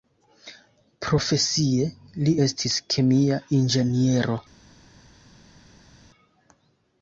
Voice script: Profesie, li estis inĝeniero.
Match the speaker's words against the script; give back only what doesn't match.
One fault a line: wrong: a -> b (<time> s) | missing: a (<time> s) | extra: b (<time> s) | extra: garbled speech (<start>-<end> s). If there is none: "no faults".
extra: kemia (2.9 s)